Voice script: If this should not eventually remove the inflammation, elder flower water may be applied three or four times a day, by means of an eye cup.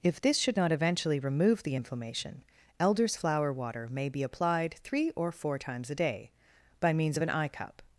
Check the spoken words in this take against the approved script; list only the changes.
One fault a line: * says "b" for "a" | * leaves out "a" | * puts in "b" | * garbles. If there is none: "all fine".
* says "elders" for "elder"